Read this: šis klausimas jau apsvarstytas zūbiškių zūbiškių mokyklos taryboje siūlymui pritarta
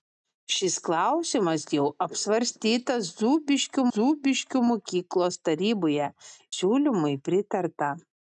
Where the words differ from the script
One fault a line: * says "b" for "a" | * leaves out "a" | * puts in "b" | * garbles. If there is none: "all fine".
all fine